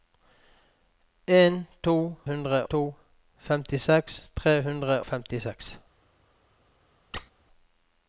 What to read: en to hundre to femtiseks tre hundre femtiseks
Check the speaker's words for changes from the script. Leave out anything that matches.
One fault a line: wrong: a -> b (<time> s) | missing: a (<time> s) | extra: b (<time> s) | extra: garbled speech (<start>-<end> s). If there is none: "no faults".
no faults